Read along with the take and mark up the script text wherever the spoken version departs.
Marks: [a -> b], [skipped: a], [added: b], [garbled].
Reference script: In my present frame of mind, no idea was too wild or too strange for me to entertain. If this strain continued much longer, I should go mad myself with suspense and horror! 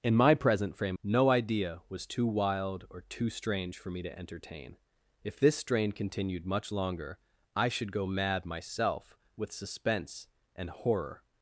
In my present frame [skipped: of mind,] no idea was too wild or too strange for me to entertain. If this strain continued much longer, I should go mad myself with suspense and horror!